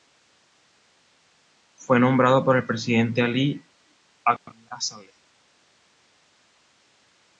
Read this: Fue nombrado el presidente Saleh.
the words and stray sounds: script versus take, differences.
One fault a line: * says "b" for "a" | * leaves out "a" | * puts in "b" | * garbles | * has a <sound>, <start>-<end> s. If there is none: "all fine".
* puts in "por"
* puts in "Ali Abdullah"